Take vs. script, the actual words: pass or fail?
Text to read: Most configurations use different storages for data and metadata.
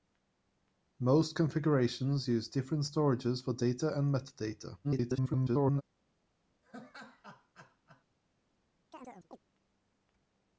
fail